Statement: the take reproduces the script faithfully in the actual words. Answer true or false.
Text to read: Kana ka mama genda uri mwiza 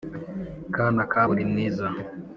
false